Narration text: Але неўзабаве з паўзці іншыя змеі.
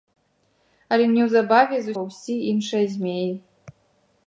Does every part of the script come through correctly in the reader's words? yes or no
yes